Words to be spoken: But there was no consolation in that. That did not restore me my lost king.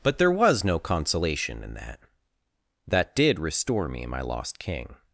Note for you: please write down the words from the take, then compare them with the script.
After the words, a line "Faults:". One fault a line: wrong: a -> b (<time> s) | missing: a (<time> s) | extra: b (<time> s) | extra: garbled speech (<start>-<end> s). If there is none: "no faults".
But there was no consolation in that. That did restore me my lost king.
Faults:
missing: not (3.4 s)